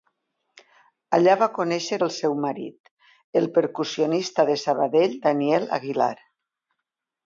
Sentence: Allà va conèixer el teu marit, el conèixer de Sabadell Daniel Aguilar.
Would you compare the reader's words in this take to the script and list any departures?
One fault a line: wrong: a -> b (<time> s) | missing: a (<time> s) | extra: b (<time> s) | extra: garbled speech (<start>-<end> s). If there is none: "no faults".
wrong: teu -> seu (2.2 s)
wrong: conèixer -> percussionista (3.6 s)